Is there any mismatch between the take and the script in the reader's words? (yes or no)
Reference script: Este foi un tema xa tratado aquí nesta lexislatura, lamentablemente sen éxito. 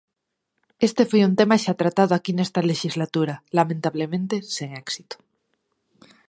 no